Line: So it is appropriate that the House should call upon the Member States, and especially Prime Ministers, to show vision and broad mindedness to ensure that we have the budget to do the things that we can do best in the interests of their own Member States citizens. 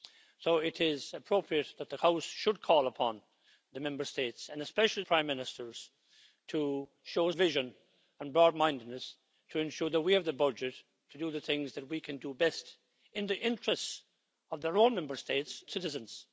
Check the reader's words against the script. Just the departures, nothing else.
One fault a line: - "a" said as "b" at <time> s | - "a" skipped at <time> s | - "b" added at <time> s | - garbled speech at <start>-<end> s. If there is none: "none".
none